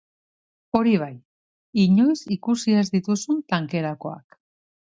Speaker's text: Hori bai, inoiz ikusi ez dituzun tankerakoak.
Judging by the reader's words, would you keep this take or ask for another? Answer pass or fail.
pass